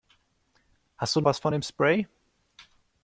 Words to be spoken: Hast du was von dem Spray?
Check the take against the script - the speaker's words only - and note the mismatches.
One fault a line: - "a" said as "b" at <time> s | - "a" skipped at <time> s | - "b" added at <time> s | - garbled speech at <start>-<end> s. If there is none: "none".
none